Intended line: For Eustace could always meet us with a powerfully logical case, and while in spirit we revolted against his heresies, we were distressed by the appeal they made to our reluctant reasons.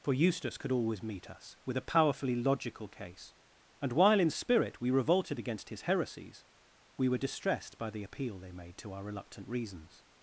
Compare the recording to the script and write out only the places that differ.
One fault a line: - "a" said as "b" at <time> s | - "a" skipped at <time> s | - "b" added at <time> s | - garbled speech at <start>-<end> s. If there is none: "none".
none